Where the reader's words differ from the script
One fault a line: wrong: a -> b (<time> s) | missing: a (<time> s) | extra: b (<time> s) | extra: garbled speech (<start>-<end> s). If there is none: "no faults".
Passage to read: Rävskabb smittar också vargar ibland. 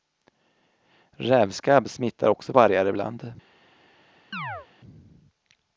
no faults